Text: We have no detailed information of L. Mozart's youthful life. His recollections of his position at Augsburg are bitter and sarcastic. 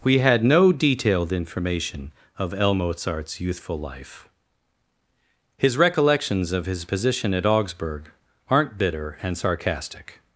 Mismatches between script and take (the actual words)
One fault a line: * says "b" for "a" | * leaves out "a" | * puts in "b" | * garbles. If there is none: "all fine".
* says "had" for "have"
* says "aren't" for "are"